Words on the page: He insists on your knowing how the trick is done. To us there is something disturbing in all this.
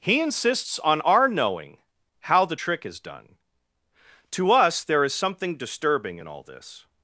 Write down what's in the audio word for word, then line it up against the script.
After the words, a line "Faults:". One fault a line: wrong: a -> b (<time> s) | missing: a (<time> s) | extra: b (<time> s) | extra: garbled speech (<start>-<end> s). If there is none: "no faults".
He insists on our knowing how the trick is done. To us there is something disturbing in all this.
Faults:
wrong: your -> our (1.0 s)